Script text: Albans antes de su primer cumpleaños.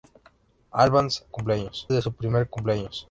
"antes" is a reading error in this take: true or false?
true